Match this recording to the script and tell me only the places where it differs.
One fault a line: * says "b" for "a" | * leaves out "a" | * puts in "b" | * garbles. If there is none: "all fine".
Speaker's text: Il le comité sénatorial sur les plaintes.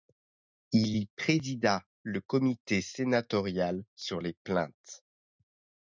* puts in "y présida"